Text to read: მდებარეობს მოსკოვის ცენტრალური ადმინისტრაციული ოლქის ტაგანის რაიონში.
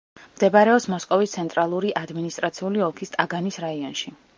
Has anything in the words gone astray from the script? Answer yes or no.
no